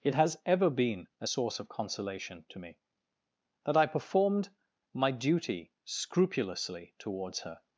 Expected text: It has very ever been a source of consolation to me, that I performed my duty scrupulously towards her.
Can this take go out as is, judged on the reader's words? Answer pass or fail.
fail